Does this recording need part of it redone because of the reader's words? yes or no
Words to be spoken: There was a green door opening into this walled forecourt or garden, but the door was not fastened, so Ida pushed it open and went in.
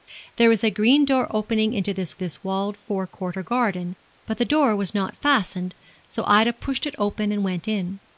yes